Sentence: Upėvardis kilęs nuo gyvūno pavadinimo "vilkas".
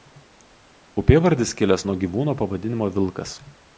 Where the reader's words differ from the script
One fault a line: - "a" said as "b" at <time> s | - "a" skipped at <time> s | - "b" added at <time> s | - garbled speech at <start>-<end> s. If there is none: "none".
none